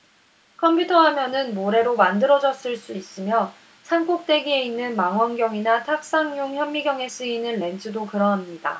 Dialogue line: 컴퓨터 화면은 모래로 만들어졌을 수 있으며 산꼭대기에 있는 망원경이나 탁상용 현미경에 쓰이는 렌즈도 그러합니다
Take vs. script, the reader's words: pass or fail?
pass